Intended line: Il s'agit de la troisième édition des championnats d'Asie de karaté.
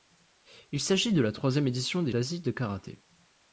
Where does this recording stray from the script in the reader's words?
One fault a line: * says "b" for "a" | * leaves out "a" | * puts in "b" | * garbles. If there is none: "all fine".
* leaves out "championnats"